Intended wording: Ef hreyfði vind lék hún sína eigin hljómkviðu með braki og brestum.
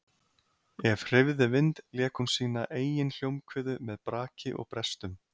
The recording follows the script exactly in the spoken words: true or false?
true